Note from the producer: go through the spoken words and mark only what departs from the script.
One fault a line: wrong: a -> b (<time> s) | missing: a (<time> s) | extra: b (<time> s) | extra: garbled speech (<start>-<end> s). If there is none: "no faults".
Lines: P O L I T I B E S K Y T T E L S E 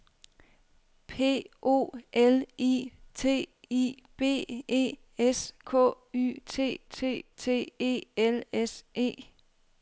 extra: T (7.4 s)